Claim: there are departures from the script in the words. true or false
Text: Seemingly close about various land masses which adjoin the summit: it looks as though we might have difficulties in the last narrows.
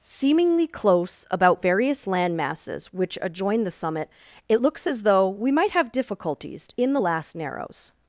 false